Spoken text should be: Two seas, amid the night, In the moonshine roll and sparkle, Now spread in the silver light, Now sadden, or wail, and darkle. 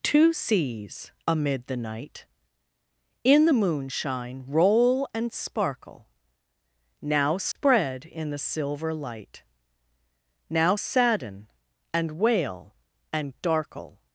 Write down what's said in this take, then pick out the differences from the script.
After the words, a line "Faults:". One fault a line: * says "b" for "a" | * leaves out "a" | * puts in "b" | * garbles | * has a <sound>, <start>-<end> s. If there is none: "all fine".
Two seas, amid the night, In the moonshine roll and sparkle, Now spread in the silver light, Now sadden, and wail, and darkle.
Faults:
* has a dropout, 7.5-7.6 s
* says "and" for "or"